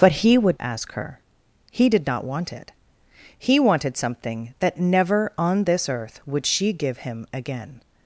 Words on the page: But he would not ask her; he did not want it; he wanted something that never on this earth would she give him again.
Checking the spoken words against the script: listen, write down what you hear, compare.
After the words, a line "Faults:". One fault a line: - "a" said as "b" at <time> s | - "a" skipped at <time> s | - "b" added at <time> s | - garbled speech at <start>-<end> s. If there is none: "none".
But he would ask her; he did not want it; he wanted something that never on this earth would she give him again.
Faults:
- "not" skipped at 0.6 s